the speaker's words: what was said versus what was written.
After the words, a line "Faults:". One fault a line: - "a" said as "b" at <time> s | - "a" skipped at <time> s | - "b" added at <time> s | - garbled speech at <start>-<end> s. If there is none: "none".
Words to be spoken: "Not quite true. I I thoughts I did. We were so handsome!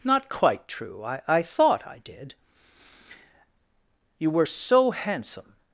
"Not quite true. I I thought I did. You were so handsome!
Faults:
- "thoughts" said as "thought" at 1.4 s
- "We" said as "You" at 4.2 s